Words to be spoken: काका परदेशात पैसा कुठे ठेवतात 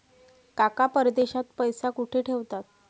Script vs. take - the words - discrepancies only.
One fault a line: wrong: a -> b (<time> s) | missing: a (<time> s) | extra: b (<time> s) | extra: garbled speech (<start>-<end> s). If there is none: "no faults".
no faults